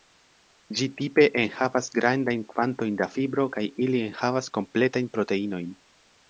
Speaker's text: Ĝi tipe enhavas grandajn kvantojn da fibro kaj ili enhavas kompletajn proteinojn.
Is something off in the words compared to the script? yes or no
no